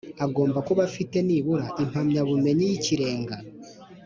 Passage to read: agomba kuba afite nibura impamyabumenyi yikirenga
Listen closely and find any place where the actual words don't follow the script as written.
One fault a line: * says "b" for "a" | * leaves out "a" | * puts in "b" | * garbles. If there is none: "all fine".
all fine